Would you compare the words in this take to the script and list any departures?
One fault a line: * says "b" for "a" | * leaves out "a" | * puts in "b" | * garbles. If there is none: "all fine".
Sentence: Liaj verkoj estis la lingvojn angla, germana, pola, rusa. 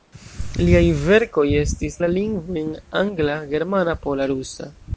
all fine